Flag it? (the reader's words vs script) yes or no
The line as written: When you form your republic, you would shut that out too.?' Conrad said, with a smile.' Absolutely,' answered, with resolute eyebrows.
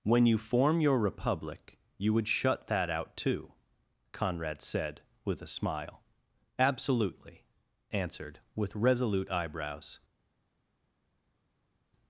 no